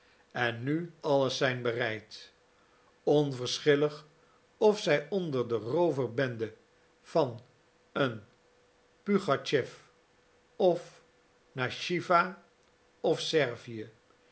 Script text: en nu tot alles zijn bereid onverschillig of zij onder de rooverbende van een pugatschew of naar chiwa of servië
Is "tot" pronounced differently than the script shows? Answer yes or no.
yes